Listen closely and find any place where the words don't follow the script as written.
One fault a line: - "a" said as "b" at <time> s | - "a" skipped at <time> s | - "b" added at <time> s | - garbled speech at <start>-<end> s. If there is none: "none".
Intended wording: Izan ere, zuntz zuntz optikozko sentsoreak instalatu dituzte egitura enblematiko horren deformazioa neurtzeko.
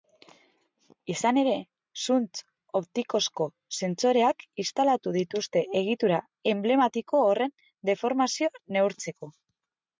- "zuntz" skipped at 2.4 s